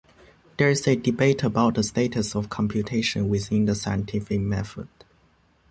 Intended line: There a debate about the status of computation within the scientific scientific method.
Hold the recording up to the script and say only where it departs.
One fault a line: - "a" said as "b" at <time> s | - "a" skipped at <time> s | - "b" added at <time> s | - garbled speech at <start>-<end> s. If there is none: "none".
- "is" added at 0.7 s
- "scientific" skipped at 4.4 s